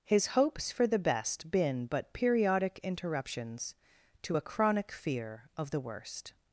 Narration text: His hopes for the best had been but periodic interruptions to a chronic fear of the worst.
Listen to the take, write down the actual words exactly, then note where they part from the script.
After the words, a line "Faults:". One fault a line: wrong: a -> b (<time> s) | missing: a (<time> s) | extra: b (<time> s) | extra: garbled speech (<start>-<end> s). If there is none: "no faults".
His hopes for the best been but periodic interruptions to a chronic fear of the worst.
Faults:
missing: had (1.5 s)